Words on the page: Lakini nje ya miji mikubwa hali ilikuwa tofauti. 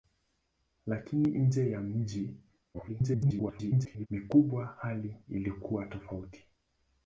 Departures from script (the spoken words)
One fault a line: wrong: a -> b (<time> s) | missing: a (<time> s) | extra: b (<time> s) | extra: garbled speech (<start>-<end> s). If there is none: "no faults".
extra: garbled speech (2.7-4.1 s)